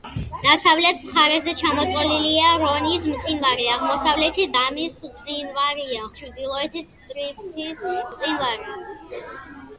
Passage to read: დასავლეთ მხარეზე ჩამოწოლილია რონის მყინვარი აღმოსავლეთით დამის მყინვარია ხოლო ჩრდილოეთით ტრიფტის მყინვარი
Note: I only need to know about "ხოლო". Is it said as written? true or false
false